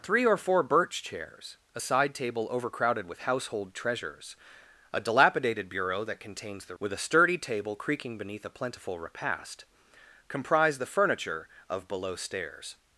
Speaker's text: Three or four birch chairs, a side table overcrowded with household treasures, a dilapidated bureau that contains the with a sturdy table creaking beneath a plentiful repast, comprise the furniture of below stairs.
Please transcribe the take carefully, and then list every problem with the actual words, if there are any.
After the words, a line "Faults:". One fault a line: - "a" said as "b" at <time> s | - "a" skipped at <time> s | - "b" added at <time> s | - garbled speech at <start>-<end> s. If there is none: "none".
Three or four birch chairs, a side table overcrowded with household treasures, a dilapidated bureau that contains the with a sturdy table creaking beneath a plentiful repast, comprise the furniture of below stairs.
Faults:
none